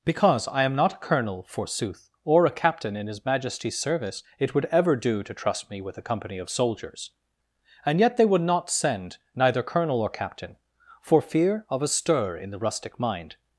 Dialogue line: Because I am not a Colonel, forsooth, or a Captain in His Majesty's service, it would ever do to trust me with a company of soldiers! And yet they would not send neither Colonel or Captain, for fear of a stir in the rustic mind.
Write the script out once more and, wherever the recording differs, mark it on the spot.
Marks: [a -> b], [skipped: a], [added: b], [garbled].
Because I am not a Colonel, forsooth, or a Captain in His Majesty's service, it would ever do to trust me with a company of soldiers! And yet they would not send neither Colonel or Captain, for fear of a stir in the rustic mind.